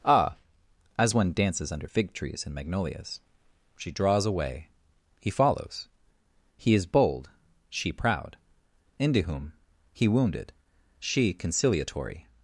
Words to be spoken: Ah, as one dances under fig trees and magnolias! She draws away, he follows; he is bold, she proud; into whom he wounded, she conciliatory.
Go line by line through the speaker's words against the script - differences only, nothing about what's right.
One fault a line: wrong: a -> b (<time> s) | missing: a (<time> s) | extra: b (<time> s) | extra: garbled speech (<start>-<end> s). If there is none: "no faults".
no faults